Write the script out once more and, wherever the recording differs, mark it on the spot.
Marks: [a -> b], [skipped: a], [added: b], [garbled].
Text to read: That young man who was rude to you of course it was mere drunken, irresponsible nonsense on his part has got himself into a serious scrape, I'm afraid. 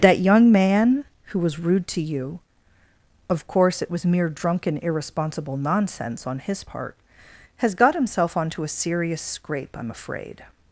That young man who was rude to you of course it was mere drunken, irresponsible nonsense on his part has got himself [into -> onto] a serious scrape, I'm afraid.